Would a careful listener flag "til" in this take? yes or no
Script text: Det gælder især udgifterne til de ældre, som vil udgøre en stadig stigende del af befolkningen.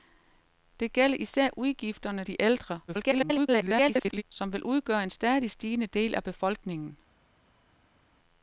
yes